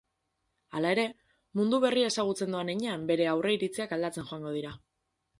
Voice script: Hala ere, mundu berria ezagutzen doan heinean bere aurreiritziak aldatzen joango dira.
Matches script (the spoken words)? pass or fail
pass